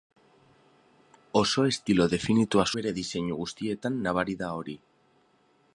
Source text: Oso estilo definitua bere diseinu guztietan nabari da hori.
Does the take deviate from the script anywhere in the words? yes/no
no